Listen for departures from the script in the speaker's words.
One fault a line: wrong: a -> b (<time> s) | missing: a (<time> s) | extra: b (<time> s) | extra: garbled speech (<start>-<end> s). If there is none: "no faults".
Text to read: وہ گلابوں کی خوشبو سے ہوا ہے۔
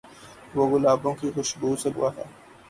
no faults